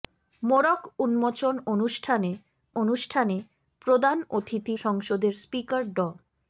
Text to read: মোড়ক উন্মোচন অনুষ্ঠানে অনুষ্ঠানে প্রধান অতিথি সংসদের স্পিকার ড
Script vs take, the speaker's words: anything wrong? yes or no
no